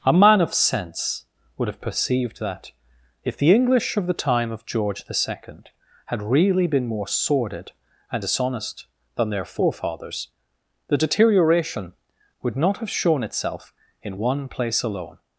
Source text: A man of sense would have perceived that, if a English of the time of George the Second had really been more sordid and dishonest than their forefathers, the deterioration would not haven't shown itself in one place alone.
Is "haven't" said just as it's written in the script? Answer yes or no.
no